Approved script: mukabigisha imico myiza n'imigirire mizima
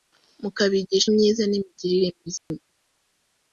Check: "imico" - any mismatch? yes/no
yes